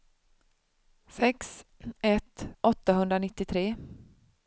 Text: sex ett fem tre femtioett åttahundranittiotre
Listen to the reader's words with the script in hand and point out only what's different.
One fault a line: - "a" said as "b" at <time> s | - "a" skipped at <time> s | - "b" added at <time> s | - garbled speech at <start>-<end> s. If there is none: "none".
- "fem tre femtioett" skipped at 2.5 s